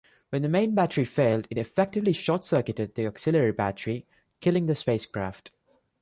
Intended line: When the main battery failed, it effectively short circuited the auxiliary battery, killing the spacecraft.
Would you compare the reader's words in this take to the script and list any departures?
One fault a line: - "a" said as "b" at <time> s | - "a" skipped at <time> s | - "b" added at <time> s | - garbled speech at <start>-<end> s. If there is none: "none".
none